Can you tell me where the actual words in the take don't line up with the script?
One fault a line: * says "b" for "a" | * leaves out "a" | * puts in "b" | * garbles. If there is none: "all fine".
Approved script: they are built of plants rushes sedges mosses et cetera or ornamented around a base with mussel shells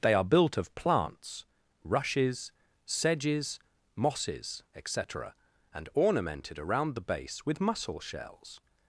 * says "and" for "or"
* says "the" for "a"